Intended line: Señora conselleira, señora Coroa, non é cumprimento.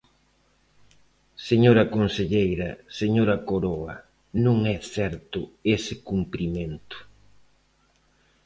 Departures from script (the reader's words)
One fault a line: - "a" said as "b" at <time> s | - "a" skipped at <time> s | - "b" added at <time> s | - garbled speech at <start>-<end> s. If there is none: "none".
- "certo ese" added at 4.9 s